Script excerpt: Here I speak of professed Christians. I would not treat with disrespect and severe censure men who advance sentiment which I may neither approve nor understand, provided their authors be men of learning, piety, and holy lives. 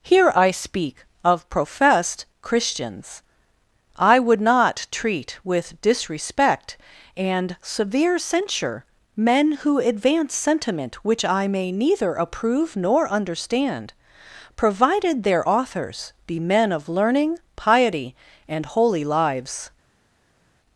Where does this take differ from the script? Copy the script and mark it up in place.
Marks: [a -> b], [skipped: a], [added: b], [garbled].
Here I speak of professed Christians. I would not treat with disrespect and severe censure men who advance sentiment which I may neither approve nor understand, provided their authors be men of learning, piety, and holy lives.